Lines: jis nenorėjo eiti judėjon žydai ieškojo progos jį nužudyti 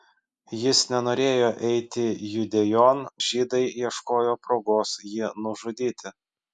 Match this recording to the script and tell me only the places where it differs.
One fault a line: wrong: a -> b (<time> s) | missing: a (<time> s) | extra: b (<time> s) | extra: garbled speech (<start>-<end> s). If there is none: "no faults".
no faults